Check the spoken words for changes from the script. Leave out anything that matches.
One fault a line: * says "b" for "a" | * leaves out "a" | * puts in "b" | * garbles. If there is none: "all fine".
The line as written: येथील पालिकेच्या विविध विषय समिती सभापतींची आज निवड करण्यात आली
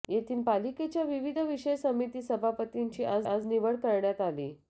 * puts in "आज"